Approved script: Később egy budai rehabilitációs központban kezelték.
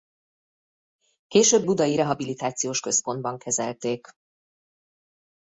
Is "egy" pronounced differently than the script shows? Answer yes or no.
yes